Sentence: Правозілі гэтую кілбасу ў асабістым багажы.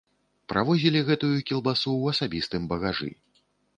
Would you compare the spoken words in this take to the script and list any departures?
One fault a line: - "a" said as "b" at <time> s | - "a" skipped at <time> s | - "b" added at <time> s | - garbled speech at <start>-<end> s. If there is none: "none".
none